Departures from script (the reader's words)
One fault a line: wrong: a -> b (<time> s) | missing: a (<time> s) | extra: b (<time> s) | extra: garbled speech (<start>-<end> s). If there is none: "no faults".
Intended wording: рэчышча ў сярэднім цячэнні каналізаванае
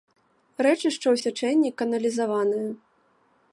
missing: сярэднім (1.2 s)